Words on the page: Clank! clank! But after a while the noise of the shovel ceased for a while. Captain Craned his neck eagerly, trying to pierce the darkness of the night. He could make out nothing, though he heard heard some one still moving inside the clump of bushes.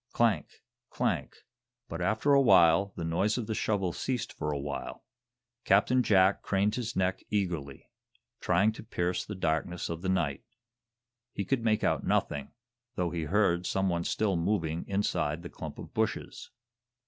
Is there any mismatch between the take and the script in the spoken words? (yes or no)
yes